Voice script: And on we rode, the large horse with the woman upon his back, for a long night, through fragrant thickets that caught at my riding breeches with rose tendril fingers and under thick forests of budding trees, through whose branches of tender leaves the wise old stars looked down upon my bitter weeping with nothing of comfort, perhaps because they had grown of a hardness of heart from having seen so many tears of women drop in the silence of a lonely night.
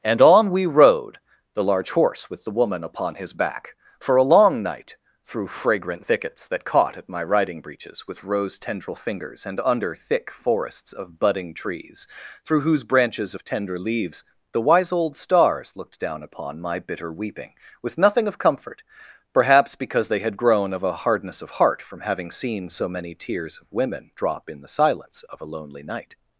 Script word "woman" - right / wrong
right